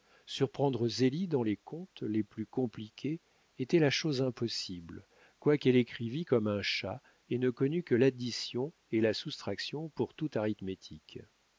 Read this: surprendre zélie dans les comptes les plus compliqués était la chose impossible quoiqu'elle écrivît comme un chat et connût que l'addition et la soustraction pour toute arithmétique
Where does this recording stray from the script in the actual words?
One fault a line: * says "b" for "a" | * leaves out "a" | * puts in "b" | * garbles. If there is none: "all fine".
* puts in "ne"